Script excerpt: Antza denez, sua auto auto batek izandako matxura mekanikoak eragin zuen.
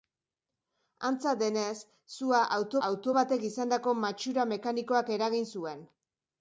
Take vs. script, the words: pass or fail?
pass